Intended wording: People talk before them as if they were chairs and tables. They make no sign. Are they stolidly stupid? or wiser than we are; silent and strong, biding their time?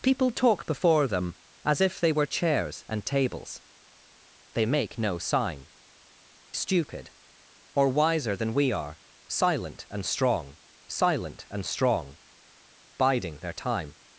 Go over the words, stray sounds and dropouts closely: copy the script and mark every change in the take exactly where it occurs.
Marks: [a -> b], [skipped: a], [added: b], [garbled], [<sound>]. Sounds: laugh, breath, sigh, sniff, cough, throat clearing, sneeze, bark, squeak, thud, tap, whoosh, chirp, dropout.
People talk before them as if they were chairs and tables. They make no sign. [skipped: Are they stolidly] stupid? or wiser than we are; silent and strong, [added: silent and strong] biding their time?